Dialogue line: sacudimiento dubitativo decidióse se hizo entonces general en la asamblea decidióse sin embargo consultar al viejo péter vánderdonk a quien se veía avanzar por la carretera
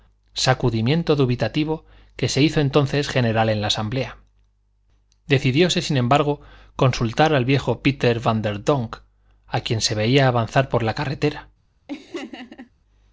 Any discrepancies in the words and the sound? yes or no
yes